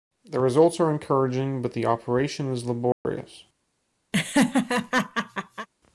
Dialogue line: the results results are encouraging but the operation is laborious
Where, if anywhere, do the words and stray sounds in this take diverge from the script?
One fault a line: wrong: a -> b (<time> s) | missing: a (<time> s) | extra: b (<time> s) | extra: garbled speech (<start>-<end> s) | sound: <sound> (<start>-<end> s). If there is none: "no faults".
missing: results (0.8 s)
sound: dropout (2.9-3.1 s)
sound: laugh (4.1-5.7 s)